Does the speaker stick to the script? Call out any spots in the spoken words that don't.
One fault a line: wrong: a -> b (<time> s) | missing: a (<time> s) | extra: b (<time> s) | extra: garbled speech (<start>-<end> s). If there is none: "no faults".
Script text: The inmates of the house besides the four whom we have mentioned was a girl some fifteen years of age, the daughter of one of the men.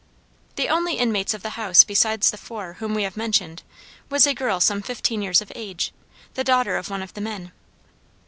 extra: only (0.7 s)